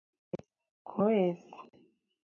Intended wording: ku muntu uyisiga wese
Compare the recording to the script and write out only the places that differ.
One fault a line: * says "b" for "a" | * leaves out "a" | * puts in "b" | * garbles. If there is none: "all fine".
* leaves out "muntu uyisiga"